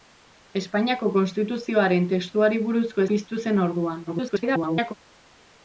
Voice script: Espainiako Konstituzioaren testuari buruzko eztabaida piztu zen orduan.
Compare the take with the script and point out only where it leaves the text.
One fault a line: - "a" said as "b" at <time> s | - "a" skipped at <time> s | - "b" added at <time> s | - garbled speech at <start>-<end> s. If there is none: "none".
- "eztabaida" skipped at 3.0 s
- garbled speech at 4.1-4.9 s